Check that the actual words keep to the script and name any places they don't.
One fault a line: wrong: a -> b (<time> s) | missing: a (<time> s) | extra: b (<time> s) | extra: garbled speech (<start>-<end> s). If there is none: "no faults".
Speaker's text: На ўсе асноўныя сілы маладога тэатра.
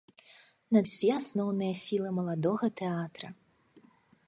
no faults